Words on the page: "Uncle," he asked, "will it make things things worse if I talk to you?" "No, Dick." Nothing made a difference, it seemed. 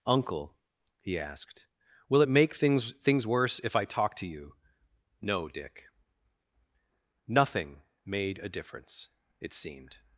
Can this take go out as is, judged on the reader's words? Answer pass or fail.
pass